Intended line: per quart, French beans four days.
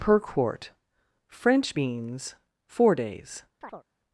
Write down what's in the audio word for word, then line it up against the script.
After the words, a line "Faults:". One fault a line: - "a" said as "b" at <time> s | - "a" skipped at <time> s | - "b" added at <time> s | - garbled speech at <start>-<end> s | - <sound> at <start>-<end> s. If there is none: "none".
per quart, French beans four days.
Faults:
- chirp at 3.6-3.8 s